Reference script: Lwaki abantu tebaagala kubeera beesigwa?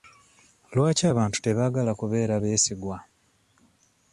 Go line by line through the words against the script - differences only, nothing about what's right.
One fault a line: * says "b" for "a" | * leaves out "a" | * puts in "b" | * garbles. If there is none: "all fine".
all fine